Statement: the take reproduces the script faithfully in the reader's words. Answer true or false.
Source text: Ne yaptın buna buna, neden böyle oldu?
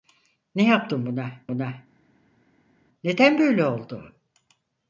true